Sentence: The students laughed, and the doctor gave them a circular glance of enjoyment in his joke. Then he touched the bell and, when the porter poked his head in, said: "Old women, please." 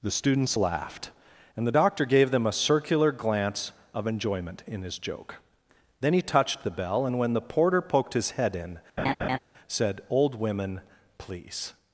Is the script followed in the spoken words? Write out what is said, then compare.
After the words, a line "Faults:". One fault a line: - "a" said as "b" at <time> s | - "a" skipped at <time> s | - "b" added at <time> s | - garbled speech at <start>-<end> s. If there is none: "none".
The students laughed, and the doctor gave them a circular glance of enjoyment in his joke. Then he touched the bell and, when the porter poked his head in, said: "Old women, please."
Faults:
none